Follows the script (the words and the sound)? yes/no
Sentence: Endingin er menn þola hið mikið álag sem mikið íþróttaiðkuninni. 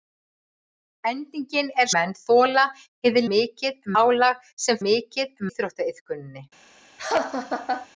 no